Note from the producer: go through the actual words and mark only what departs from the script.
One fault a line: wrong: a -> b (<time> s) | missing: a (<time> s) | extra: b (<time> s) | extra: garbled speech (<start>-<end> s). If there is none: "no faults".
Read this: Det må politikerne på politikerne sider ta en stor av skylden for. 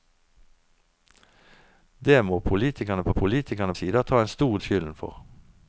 no faults